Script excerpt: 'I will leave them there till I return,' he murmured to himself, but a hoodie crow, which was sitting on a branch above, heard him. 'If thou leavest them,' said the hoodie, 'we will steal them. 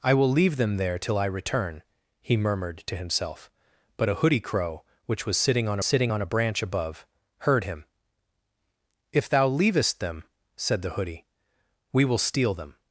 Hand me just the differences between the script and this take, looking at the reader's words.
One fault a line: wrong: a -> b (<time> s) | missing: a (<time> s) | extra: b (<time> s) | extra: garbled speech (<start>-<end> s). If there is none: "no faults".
extra: sitting on (5.8 s)